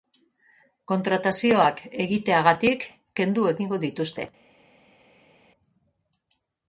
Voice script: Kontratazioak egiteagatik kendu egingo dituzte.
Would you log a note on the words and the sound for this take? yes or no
no